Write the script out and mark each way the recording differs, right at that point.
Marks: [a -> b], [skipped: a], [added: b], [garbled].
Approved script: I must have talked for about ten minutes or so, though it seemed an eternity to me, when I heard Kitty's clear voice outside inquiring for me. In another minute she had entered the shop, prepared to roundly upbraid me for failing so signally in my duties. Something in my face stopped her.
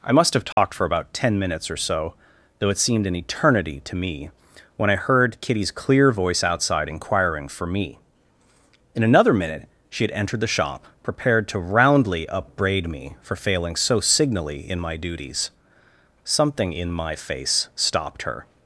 I must have talked for about ten minutes or so, though it seemed an eternity to me, when I heard Kitty's clear voice outside inquiring for me. In another minute she had entered the shop, prepared to roundly upbraid me for failing so signally in my duties. Something in my face stopped her.